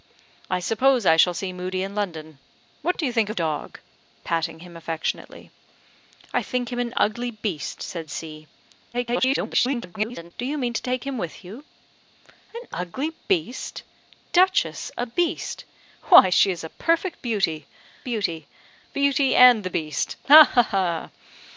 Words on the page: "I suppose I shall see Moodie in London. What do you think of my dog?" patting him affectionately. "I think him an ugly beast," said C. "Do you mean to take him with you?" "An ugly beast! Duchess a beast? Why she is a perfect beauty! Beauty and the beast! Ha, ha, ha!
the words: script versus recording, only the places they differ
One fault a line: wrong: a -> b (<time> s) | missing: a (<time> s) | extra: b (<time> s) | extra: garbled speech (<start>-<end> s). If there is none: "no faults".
missing: my (3.4 s)
extra: garbled speech (8.9-10.3 s)
extra: Beauty (18.9 s)